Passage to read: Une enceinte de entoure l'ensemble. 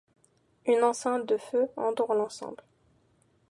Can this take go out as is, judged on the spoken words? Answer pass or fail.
fail